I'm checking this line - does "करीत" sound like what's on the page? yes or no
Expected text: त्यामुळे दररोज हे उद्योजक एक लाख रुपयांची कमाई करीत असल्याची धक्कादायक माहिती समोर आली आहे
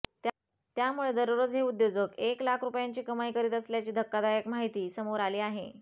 yes